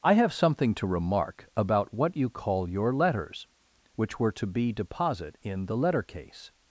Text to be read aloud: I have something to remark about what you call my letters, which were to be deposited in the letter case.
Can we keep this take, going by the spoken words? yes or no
no